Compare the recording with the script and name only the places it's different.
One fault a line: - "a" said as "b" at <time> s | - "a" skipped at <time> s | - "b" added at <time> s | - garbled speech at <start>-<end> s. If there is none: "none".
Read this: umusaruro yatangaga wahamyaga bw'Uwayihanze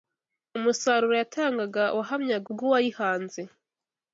none